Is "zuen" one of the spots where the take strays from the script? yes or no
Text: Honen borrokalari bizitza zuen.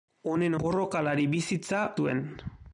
no